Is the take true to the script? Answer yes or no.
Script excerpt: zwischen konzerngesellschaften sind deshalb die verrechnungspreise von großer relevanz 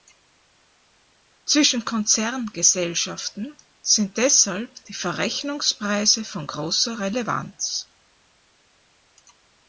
yes